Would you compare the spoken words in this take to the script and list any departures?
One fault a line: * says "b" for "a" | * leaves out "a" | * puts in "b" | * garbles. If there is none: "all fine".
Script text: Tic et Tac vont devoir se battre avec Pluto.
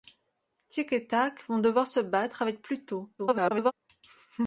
* garbles